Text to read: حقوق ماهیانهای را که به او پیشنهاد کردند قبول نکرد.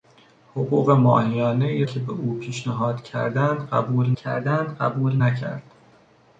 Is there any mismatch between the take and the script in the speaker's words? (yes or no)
yes